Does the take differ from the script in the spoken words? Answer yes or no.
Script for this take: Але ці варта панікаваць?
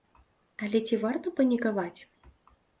no